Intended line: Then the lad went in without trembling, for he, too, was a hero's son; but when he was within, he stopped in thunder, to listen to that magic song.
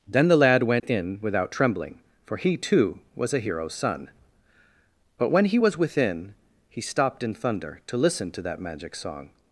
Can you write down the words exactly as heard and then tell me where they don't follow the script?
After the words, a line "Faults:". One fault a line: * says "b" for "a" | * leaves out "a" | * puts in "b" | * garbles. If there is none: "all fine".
Then the lad went in without trembling, for he, too, was a hero's son; but when he was within, he stopped in thunder, to listen to that magic song.
Faults:
all fine